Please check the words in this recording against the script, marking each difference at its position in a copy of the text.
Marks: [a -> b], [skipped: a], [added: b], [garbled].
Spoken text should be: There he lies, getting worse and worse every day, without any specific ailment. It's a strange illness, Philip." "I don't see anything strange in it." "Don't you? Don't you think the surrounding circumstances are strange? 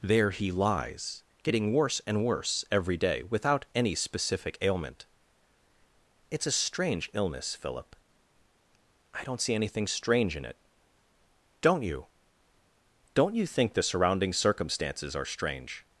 There he lies, getting worse and worse every day, without any specific ailment. It's a strange illness, Philip." "I don't see anything strange in it." "Don't you? Don't you think the surrounding circumstances are strange?